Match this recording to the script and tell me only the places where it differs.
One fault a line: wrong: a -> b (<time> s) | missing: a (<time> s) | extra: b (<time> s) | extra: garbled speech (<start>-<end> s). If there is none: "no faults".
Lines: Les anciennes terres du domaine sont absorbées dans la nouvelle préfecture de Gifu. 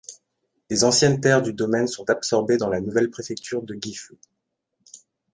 no faults